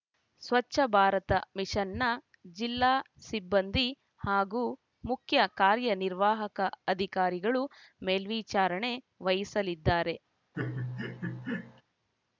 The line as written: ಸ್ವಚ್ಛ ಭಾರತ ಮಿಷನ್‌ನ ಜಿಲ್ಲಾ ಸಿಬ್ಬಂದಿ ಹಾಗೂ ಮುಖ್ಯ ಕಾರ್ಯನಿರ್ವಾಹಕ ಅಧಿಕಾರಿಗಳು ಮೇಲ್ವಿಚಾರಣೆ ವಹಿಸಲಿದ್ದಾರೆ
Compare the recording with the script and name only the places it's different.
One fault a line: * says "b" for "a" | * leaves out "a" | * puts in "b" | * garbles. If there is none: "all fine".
all fine